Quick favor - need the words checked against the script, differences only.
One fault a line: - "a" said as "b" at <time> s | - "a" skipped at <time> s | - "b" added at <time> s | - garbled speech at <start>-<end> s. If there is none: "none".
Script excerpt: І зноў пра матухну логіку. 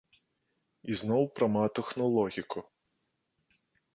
none